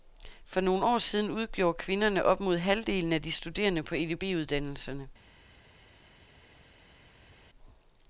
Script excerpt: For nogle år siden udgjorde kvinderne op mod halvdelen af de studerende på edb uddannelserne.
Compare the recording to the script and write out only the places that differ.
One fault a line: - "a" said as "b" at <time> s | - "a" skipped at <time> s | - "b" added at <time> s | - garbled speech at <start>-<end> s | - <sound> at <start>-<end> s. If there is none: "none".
none